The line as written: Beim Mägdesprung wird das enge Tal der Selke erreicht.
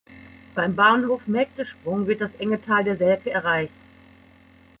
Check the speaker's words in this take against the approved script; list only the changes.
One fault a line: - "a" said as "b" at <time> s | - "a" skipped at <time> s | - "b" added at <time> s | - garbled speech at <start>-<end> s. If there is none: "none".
- "Bahnhof" added at 0.8 s